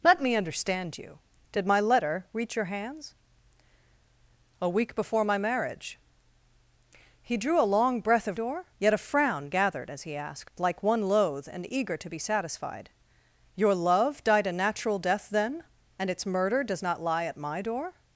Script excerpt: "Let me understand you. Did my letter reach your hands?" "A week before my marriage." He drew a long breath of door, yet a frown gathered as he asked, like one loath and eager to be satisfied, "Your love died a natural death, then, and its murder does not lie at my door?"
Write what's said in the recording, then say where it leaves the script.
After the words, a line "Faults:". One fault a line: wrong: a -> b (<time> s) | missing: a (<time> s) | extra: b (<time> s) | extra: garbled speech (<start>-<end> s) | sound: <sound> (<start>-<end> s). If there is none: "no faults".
"Let me understand you. Did my letter reach your hands?" "A week before my marriage." He drew a long breath of door, yet a frown gathered as he asked, like one loath and eager to be satisfied, "Your love died a natural death, then, and its murder does not lie at my door?"
Faults:
no faults